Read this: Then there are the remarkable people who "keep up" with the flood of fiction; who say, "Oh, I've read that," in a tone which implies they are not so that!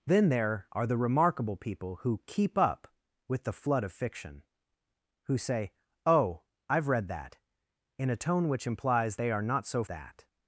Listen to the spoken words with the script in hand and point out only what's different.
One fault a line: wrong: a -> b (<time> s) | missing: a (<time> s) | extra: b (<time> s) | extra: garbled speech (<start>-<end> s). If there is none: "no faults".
no faults